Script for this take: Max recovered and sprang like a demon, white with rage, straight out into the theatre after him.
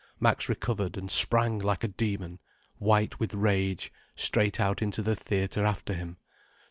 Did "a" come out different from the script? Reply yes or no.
no